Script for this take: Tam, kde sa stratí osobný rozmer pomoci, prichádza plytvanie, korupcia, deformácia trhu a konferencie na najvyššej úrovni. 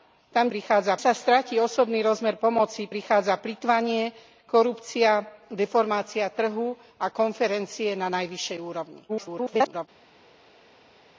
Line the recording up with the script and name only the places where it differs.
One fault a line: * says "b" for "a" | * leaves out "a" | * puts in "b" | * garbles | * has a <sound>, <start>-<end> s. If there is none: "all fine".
* says "prichádza" for "kde"
* garbles